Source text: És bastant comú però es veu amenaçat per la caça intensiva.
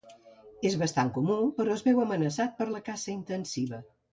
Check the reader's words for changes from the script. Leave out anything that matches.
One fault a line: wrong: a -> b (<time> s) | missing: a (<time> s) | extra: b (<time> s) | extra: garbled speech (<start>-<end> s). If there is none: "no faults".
no faults